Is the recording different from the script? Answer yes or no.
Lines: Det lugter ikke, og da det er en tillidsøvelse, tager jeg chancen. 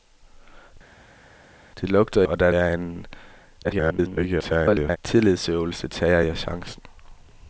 yes